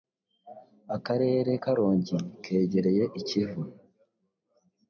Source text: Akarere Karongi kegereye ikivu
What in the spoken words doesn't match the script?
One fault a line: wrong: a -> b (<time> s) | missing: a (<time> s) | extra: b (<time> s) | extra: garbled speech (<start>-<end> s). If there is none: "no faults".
no faults